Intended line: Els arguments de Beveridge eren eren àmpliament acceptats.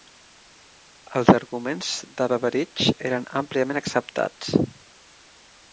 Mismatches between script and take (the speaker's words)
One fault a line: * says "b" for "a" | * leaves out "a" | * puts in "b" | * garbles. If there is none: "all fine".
* leaves out "eren"